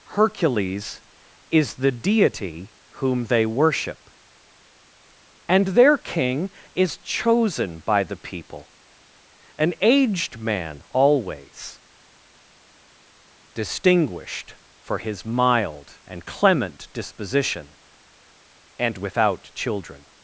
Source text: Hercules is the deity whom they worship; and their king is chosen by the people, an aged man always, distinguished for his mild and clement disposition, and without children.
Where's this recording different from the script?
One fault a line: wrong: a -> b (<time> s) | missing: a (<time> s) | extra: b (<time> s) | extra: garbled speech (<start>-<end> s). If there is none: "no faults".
no faults